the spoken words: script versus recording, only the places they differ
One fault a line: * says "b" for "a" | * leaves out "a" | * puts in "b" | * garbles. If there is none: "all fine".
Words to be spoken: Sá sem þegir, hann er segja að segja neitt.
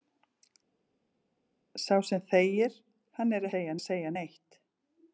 all fine